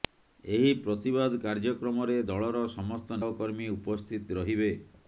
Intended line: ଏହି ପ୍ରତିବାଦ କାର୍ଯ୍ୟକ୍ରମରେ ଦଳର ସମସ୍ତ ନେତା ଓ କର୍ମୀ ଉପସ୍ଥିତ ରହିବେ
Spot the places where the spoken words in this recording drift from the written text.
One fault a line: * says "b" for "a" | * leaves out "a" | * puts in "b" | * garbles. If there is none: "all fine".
* leaves out "ନେତା"